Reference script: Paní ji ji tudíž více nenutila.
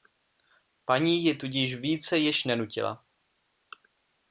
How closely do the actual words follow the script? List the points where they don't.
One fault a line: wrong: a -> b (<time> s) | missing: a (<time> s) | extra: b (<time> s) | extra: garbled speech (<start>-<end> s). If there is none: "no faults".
missing: ji (1.4 s)
extra: již (2.2 s)